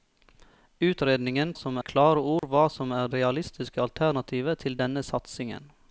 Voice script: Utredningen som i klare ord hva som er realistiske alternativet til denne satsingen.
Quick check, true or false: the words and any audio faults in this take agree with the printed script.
false